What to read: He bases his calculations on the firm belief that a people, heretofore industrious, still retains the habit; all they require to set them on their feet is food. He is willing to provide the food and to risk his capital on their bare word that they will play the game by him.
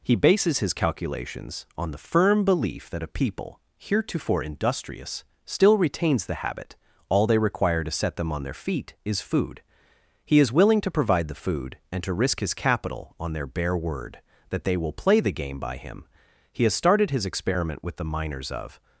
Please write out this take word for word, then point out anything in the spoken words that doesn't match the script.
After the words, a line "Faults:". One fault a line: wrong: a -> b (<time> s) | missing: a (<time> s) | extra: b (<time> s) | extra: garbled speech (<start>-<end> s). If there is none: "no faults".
He bases his calculations on the firm belief that a people, heretofore industrious, still retains the habit; all they require to set them on their feet is food. He is willing to provide the food and to risk his capital on their bare word that they will play the game by him. He has started his experiment with the miners of
Faults:
extra: He has started his experiment with the miners of (16.5 s)